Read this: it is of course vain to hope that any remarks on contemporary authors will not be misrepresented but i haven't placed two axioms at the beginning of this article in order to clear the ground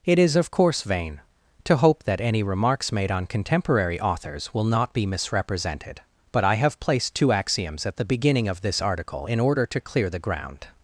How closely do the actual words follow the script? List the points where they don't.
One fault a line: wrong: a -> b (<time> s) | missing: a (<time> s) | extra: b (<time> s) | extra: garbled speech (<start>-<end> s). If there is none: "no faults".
extra: made (2.9 s)
wrong: haven't -> have (6.5 s)